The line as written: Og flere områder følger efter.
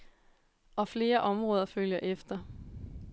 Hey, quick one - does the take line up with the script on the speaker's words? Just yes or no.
yes